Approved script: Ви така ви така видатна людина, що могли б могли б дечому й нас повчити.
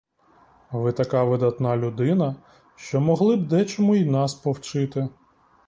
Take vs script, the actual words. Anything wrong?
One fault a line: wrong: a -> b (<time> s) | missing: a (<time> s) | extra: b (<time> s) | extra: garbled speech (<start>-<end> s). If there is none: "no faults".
missing: ви така (1.2 s)
missing: могли б (3.5 s)